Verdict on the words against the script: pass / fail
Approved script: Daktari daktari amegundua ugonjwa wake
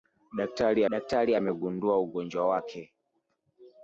pass